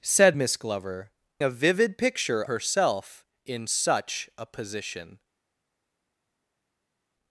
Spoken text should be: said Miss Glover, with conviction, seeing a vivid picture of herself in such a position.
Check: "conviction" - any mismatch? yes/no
yes